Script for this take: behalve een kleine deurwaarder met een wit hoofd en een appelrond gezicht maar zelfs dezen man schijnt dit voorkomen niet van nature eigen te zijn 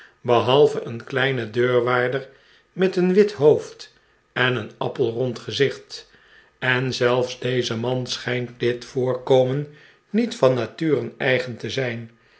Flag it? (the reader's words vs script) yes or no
yes